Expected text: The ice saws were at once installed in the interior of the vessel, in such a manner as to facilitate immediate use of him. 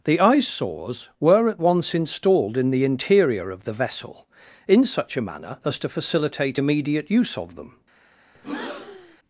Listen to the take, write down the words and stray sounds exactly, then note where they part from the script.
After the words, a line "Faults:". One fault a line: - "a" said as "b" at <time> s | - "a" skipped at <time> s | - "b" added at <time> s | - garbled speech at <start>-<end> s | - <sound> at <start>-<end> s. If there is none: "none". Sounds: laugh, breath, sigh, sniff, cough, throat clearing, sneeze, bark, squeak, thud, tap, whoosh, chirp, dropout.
The ice saws were at once installed in the interior of the vessel, in such a manner as to facilitate immediate use of them.
Faults:
- "him" said as "them" at 7.6 s
- breath at 8.3-9.2 s